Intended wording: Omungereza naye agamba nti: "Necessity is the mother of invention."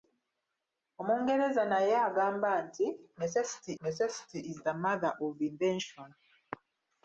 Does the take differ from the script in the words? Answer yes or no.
yes